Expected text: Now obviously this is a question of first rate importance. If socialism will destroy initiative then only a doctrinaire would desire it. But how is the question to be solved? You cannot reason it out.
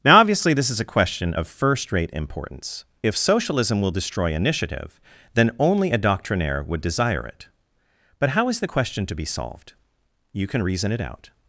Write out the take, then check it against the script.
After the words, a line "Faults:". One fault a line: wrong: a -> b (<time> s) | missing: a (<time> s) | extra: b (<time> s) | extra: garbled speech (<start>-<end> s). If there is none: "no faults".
Now obviously this is a question of first rate importance. If socialism will destroy initiative then only a doctrinaire would desire it. But how is the question to be solved? You can reason it out.
Faults:
wrong: cannot -> can (10.5 s)